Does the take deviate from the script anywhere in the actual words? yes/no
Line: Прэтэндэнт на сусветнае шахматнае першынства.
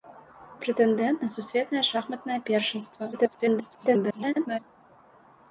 yes